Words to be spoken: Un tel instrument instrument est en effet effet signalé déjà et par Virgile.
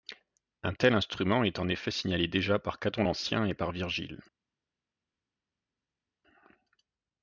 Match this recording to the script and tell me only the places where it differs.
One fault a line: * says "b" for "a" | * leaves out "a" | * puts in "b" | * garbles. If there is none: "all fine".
* leaves out "instrument"
* leaves out "effet"
* puts in "par Caton l'Ancien"